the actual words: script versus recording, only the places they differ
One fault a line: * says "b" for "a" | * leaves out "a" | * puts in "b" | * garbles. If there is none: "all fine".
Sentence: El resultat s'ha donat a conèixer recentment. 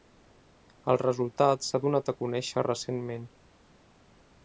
all fine